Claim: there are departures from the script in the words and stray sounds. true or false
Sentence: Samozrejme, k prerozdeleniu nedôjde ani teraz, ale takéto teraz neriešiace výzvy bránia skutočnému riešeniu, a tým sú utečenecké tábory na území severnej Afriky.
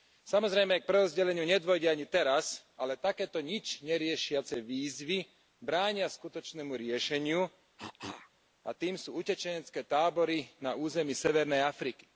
true